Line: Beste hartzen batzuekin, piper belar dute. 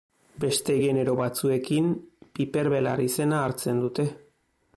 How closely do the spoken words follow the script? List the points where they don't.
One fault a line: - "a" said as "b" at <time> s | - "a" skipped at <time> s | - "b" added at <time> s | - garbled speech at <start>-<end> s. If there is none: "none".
- "hartzen" said as "genero" at 0.8 s
- "izena hartzen" added at 3.1 s